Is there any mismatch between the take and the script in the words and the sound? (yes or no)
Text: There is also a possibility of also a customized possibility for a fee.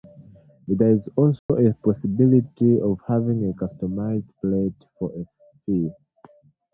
yes